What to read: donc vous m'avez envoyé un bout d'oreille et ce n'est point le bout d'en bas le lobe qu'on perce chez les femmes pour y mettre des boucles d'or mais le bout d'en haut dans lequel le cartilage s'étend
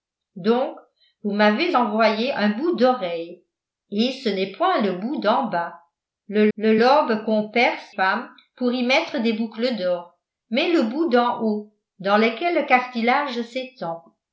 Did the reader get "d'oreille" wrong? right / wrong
right